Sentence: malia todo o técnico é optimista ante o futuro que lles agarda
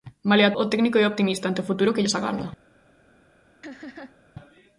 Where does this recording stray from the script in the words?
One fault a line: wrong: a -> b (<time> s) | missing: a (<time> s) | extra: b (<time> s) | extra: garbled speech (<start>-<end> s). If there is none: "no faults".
missing: todo (0.6 s)